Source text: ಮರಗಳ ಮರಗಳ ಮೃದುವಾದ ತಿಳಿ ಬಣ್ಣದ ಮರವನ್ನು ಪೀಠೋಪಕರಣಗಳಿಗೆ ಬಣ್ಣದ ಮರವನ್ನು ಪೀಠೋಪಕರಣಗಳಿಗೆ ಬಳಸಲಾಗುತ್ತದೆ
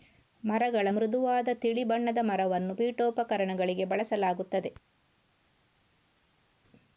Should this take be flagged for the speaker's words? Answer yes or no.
yes